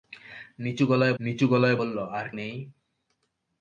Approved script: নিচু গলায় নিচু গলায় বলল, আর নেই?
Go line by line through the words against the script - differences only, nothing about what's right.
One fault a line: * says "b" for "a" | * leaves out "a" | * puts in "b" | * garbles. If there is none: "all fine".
all fine